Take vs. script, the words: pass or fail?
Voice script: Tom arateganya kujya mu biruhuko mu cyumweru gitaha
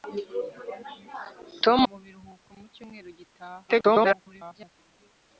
fail